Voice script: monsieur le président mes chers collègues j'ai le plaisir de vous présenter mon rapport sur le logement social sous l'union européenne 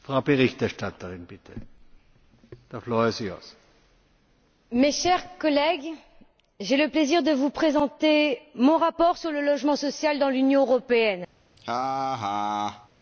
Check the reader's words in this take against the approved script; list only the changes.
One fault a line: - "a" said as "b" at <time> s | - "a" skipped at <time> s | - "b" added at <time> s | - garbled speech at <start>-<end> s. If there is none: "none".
- "sous" said as "dans" at 10.2 s